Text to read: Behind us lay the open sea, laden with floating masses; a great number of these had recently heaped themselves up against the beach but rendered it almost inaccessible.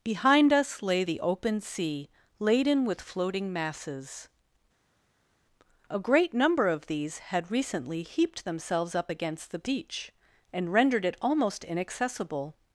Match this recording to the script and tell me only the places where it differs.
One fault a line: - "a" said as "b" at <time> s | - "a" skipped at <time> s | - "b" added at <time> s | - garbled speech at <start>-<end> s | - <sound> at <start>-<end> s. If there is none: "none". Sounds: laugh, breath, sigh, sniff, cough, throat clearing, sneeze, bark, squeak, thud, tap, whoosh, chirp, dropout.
- "but" said as "and" at 10.5 s